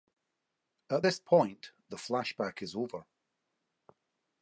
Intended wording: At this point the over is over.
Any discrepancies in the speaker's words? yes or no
yes